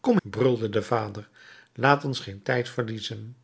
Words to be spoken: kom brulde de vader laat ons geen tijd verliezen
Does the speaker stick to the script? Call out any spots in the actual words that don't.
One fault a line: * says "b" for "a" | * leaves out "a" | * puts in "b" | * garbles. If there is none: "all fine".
all fine